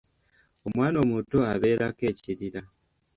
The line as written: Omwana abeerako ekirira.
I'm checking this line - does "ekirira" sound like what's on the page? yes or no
yes